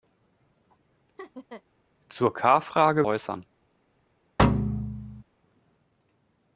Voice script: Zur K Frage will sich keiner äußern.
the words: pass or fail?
fail